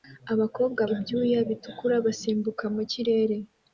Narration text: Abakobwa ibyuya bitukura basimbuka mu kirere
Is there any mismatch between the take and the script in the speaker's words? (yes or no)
no